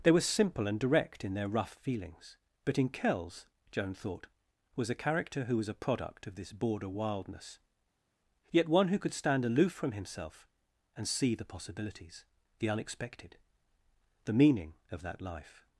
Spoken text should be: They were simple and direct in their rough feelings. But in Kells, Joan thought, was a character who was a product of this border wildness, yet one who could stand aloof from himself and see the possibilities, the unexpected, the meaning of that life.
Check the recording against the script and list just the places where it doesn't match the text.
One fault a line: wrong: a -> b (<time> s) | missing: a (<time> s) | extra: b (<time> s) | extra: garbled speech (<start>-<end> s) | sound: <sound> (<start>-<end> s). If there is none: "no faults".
no faults